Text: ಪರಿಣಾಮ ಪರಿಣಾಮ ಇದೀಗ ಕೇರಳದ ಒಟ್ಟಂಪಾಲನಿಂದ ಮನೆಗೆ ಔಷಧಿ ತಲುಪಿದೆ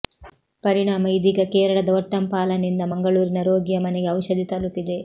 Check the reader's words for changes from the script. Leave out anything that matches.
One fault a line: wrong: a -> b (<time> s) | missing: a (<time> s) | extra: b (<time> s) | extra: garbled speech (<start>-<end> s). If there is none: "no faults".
missing: ಪರಿಣಾಮ (1.1 s)
extra: ಮಂಗಳೂರಿನ ರೋಗಿಯ (2.9 s)